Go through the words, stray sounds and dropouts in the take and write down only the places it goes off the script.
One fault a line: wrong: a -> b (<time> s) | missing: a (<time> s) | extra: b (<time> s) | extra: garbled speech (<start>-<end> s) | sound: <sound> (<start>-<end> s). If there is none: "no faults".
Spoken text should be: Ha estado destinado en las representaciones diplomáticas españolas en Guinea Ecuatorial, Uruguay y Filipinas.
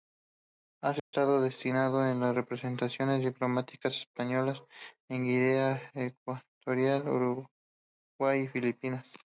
sound: dropout (1.0-1.1 s)